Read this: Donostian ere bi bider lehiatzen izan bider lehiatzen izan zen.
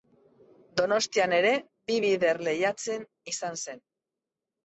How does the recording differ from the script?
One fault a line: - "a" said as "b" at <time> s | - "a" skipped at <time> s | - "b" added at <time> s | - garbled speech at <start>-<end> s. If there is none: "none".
- "bider lehiatzen izan" skipped at 3.6 s